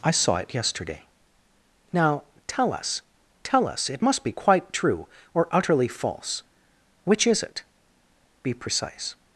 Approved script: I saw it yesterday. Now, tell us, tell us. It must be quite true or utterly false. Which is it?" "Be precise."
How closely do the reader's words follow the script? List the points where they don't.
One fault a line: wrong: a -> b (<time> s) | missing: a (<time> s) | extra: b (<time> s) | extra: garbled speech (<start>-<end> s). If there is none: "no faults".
no faults